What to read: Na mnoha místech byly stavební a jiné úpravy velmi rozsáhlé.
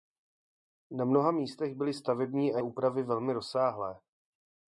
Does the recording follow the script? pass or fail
fail